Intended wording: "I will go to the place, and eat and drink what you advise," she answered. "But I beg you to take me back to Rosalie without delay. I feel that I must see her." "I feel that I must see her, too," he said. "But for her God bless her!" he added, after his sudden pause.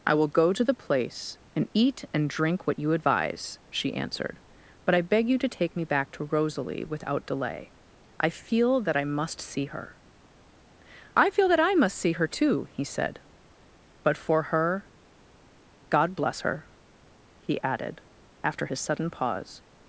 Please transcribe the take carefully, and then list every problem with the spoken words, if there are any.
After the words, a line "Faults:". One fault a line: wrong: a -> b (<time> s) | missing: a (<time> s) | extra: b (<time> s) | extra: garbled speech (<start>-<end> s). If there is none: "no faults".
"I will go to the place, and eat and drink what you advise," she answered. "But I beg you to take me back to Rosalie without delay. I feel that I must see her." "I feel that I must see her, too," he said. "But for her God bless her!" he added, after his sudden pause.
Faults:
no faults